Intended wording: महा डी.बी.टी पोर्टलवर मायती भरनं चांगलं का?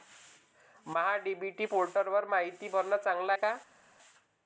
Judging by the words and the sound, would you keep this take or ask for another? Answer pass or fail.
pass